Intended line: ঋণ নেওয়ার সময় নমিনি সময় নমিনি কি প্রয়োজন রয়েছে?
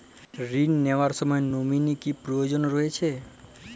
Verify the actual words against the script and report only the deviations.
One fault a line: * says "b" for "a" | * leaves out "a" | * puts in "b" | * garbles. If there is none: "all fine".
* leaves out "সময় নমিনি"